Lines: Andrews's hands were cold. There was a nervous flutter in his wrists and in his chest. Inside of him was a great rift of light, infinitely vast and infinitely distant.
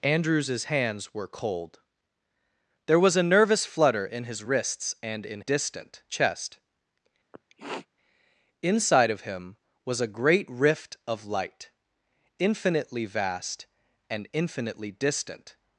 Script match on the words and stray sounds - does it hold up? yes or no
no